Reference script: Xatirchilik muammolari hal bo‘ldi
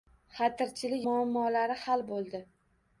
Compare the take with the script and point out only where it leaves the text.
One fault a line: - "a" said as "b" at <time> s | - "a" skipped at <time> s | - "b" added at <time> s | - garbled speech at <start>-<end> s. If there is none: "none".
none